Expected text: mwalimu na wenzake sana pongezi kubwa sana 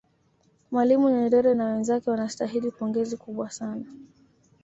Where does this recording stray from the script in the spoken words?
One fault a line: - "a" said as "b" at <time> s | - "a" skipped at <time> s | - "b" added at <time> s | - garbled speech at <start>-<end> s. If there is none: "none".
- "nyerere" added at 1.1 s
- "sana" said as "wanastahili" at 2.1 s